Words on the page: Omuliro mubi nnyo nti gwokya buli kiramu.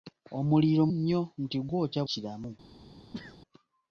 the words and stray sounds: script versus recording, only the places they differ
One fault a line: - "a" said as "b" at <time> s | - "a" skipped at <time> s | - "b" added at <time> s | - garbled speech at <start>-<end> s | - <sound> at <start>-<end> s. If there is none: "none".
- "mubi" skipped at 0.8 s
- "buli" skipped at 2.0 s
- sneeze at 3.1-3.4 s